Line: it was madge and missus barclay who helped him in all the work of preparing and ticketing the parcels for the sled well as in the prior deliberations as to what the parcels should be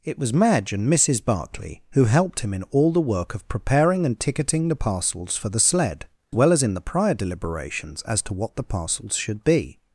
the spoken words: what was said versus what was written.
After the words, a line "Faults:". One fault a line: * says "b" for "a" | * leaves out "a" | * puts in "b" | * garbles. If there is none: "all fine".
it was madge and missus barclay who helped him in all the work of preparing and ticketing the parcels for the sled well as in the prior deliberations as to what the parcels should be
Faults:
all fine